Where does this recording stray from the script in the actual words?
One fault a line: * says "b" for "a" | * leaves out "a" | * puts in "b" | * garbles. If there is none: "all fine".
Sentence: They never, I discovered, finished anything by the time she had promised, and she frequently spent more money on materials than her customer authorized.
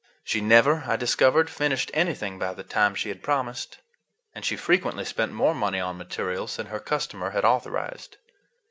* says "She" for "They"
* puts in "had"